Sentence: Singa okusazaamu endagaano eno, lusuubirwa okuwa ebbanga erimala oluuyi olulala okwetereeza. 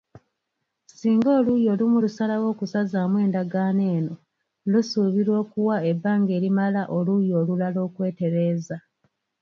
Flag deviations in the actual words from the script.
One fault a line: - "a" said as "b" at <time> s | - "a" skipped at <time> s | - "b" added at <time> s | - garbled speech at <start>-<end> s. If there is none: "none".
- "oluuyi olumu lusalawo" added at 1.4 s